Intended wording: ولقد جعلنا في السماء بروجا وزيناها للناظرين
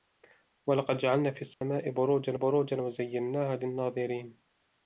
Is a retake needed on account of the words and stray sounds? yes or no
yes